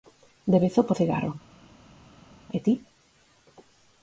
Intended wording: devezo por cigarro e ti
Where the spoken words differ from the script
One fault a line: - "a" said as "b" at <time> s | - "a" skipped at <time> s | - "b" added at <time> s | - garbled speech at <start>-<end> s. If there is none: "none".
none